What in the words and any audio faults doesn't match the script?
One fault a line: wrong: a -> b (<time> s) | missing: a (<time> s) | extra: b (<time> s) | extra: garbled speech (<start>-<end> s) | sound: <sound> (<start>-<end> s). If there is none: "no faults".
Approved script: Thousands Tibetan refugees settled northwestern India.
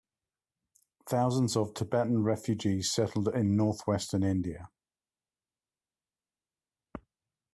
extra: of (1.6 s)
extra: in (3.3 s)